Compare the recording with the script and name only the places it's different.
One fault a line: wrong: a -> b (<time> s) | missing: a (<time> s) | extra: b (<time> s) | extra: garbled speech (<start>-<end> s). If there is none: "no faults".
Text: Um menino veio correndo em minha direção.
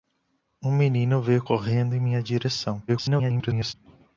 extra: garbled speech (2.9-3.7 s)